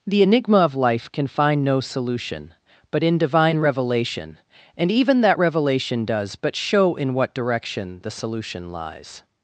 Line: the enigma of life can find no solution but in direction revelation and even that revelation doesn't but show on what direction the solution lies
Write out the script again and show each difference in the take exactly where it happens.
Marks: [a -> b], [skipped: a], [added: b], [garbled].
the enigma of life can find no solution but in [direction -> divine] revelation and even that revelation [doesn't -> does] but show [on -> in] what direction the solution lies